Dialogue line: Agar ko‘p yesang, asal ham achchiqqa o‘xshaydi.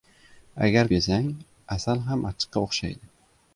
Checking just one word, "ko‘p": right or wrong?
wrong